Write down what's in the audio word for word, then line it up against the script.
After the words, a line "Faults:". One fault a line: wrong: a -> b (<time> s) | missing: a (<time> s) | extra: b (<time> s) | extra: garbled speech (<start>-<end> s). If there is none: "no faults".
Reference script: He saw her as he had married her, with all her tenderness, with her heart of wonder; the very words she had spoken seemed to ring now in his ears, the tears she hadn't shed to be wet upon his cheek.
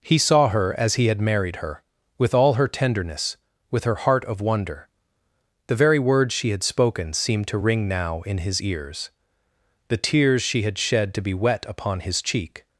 He saw her as he had married her, with all her tenderness, with her heart of wonder; the very words she had spoken seemed to ring now in his ears, the tears she had shed to be wet upon his cheek.
Faults:
wrong: hadn't -> had (10.6 s)